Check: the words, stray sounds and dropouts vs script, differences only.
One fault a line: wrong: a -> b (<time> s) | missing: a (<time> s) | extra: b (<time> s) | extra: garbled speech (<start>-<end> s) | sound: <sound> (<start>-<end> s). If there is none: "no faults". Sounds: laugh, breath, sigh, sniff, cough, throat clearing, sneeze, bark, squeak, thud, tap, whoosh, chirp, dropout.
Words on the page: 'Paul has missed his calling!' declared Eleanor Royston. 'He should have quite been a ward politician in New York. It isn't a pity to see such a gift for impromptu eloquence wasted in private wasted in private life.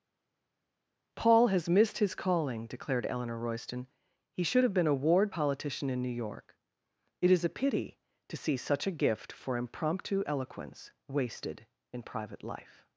missing: quite (4.7 s)
wrong: isn't -> is (7.3 s)
missing: wasted in private (12.4 s)